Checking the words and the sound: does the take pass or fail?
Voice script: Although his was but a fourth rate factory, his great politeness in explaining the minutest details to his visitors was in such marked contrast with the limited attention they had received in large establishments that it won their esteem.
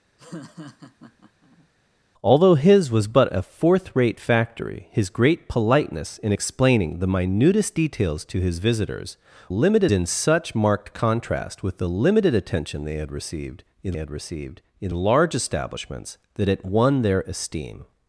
fail